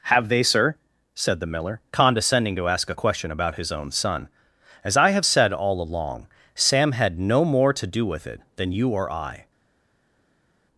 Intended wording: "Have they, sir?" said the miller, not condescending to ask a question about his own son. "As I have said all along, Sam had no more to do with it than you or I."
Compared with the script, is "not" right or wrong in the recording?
wrong